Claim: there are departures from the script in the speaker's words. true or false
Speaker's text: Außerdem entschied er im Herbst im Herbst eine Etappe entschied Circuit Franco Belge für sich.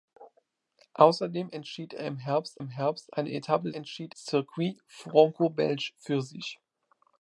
false